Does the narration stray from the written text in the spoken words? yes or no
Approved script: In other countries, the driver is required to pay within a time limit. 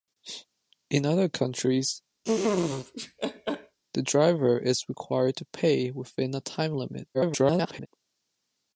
yes